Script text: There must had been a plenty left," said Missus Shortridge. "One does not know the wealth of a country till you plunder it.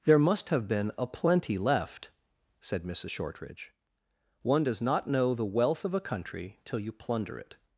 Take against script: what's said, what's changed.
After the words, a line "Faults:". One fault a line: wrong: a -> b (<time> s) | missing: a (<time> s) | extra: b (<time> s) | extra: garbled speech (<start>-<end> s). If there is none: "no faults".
There must have been a plenty left," said Missus Shortridge. "One does not know the wealth of a country till you plunder it.
Faults:
wrong: had -> have (0.5 s)